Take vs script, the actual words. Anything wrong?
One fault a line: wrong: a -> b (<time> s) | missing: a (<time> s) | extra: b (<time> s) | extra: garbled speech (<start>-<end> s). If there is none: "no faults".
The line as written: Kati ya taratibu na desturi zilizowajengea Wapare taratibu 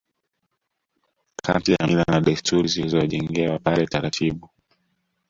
wrong: taratibu -> mila (1.9 s)